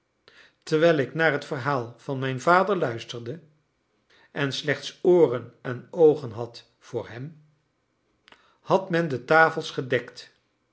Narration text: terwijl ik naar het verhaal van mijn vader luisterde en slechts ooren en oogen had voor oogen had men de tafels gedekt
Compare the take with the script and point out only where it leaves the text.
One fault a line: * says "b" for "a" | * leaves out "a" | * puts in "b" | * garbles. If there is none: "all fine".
* says "hem" for "oogen"